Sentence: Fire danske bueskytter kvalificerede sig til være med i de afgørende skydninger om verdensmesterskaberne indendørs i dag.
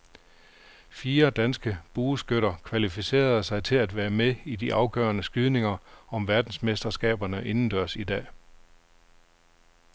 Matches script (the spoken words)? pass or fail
fail